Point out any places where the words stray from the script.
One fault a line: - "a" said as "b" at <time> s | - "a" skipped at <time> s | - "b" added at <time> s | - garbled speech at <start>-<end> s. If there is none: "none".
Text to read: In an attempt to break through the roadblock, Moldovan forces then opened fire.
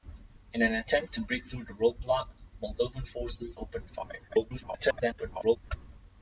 - "then" skipped at 3.6 s
- garbled speech at 4.3-5.6 s